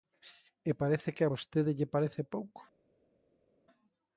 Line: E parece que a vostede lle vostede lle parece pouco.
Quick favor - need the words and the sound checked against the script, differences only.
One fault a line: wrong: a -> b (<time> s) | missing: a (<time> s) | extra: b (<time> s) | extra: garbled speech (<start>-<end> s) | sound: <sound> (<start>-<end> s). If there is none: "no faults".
missing: vostede lle (1.9 s)